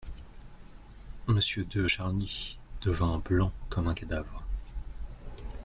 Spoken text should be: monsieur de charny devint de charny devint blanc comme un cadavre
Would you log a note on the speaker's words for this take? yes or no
yes